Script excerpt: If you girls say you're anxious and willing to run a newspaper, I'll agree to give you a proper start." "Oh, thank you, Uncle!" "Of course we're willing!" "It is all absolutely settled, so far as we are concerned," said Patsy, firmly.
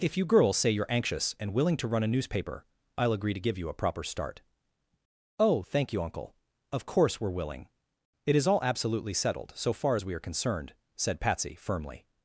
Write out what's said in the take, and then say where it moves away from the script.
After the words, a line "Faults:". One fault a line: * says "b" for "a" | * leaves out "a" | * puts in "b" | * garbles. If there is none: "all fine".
If you girls say you're anxious and willing to run a newspaper, I'll agree to give you a proper start." "Oh, thank you, Uncle!" "Of course we're willing!" "It is all absolutely settled, so far as we are concerned," said Patsy, firmly.
Faults:
all fine